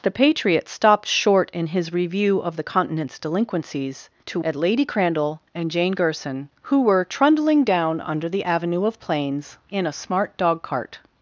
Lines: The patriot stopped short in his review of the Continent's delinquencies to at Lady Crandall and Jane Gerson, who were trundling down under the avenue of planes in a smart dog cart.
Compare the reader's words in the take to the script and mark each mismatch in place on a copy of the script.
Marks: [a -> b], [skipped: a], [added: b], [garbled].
The patriot stopped short in his review of the Continent's delinquencies to at Lady Crandall and Jane Gerson, who were trundling down under the avenue of planes in a smart dog cart.